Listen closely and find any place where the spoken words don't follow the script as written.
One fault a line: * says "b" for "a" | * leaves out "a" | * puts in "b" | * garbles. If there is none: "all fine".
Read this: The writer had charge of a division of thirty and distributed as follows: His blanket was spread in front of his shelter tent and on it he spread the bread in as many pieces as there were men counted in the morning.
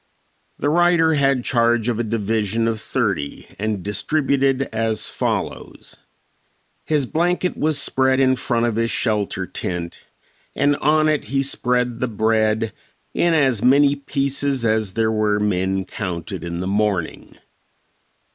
all fine